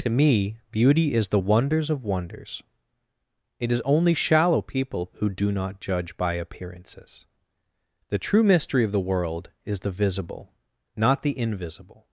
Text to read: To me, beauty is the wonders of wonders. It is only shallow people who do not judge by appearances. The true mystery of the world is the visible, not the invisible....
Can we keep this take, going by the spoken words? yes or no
yes